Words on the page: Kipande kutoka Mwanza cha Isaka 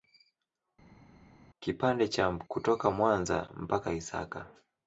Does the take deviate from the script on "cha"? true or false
true